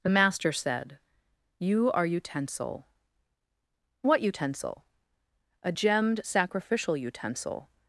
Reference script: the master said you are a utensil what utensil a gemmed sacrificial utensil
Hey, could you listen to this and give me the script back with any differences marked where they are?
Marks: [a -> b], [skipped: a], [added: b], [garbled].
the master said you are [skipped: a] utensil what utensil a gemmed sacrificial utensil